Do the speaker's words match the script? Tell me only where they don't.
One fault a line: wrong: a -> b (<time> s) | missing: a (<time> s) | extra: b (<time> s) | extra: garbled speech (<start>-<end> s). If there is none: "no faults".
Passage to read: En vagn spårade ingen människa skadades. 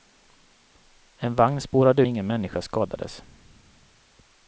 no faults